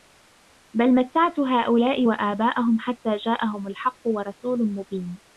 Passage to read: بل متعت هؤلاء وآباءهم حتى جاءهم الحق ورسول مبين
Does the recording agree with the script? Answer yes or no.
yes